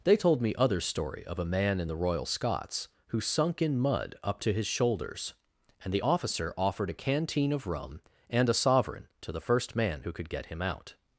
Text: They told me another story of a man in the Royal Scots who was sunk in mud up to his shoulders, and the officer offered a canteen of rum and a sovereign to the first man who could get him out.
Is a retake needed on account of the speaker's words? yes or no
yes